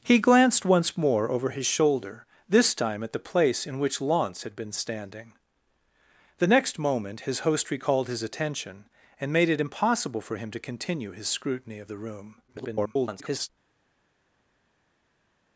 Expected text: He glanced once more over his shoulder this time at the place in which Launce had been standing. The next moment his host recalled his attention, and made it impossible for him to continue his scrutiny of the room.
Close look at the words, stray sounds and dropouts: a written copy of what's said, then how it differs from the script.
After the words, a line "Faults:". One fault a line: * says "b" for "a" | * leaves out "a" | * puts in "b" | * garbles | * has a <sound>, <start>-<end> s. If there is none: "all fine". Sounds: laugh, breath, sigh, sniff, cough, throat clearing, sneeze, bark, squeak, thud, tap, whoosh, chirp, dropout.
He glanced once more over his shoulder this time at the place in which Launce had been standing. The next moment his host recalled his attention, and made it impossible for him to continue his scrutiny of the room. [garbled]
Faults:
* garbles